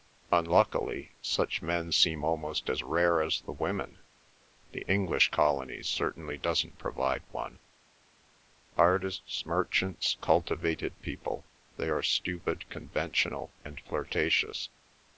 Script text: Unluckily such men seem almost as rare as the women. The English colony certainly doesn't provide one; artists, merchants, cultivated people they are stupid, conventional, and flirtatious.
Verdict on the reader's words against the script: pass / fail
pass